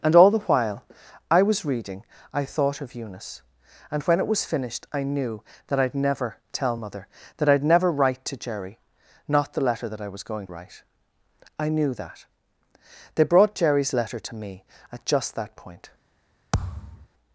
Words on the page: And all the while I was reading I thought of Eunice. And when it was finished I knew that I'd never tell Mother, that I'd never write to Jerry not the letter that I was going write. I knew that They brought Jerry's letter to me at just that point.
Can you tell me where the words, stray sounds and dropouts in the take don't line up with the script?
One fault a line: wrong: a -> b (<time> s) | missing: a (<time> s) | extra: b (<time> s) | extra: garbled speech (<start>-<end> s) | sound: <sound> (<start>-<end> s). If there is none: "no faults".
sound: thud (16.5-17.1 s)